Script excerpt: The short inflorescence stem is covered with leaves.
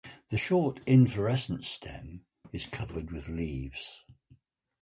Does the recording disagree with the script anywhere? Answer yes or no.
no